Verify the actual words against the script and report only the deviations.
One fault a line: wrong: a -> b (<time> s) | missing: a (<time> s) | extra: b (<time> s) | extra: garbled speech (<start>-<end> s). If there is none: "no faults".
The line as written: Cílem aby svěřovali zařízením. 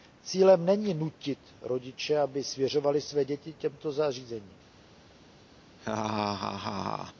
extra: není nutit rodiče (0.7 s)
extra: své děti těmto (3.0 s)